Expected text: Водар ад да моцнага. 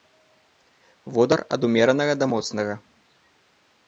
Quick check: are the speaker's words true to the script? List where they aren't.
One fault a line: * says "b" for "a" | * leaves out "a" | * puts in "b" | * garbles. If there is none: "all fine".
* puts in "умеранага"